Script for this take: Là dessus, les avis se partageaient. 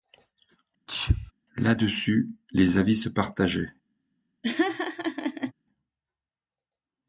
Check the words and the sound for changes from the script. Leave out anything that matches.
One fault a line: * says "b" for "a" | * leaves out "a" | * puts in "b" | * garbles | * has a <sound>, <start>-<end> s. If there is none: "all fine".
* has a sneeze, 0.9-1.3 s
* has a laugh, 4.4-5.5 s